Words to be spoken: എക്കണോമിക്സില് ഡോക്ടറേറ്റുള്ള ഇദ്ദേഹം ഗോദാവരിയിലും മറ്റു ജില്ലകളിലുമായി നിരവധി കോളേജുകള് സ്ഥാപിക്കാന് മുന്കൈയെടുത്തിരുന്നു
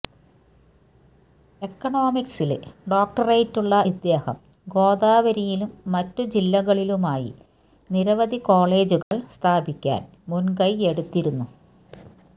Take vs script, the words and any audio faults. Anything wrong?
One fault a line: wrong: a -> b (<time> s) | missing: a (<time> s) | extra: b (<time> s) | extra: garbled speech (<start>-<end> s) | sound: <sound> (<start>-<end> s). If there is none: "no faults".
sound: dropout (9.0-9.1 s)